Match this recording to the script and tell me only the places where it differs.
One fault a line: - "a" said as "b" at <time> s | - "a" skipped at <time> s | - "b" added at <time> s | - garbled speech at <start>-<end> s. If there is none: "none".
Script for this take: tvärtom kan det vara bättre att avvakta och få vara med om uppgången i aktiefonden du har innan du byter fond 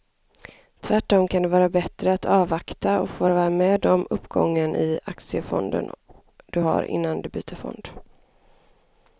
none